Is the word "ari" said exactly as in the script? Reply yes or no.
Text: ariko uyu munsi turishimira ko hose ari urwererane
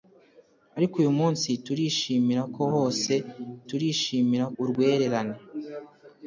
no